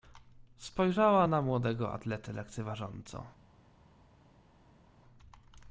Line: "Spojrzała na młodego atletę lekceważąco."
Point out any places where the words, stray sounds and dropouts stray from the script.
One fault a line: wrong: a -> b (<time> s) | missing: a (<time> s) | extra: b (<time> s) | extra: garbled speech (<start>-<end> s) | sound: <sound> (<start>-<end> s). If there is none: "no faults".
no faults